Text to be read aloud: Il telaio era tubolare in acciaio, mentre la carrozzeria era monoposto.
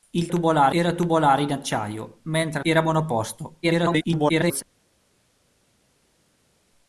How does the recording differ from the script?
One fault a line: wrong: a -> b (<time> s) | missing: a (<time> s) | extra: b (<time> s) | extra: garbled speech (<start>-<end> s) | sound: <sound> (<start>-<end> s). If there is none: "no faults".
wrong: telaio -> tubolare (0.3 s)
missing: la carrozzeria (2.6 s)
extra: garbled speech (3.6-4.6 s)